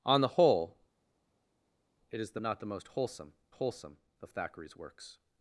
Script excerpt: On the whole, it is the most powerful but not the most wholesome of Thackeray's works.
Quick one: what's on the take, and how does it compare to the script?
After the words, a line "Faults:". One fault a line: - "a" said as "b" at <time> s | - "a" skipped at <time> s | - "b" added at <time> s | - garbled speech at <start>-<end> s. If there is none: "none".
On the whole, it is the not the most wholesome wholesome of Thackeray's works.
Faults:
- "most powerful but" skipped at 2.4 s
- "wholesome" added at 3.5 s